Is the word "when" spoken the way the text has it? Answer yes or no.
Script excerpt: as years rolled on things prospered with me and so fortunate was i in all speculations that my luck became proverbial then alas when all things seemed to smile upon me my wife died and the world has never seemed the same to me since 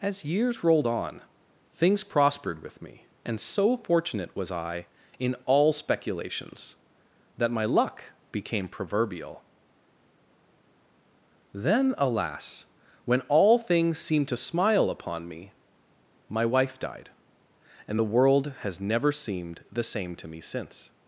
yes